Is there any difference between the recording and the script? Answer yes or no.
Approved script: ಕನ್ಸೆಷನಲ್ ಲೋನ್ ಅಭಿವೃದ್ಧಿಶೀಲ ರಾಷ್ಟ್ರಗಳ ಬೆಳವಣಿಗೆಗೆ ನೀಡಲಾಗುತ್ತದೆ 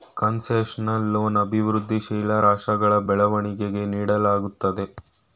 no